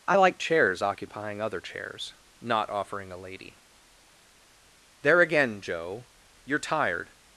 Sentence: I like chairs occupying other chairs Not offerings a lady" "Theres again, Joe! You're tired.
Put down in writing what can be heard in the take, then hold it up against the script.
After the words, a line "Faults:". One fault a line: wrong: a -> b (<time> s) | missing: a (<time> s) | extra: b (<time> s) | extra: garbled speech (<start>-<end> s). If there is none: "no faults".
I like chairs occupying other chairs Not offering a lady" "There again, Joe! You're tired.
Faults:
wrong: offerings -> offering (2.7 s)
wrong: Theres -> There (5.0 s)